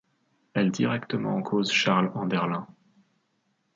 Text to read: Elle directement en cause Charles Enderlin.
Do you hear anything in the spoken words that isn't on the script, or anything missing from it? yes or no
no